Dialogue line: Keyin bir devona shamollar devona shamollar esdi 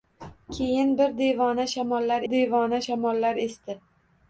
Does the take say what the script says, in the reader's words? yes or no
yes